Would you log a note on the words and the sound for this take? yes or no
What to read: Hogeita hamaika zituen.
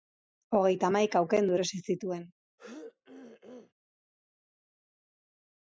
yes